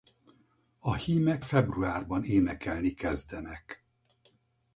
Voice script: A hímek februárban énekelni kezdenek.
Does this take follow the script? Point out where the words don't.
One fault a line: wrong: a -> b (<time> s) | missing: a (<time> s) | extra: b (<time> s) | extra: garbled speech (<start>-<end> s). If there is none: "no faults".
no faults